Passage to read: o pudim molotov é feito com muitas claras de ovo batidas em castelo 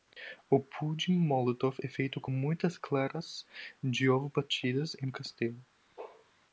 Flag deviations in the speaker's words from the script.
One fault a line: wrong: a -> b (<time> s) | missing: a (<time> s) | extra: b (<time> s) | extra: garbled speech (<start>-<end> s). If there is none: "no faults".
no faults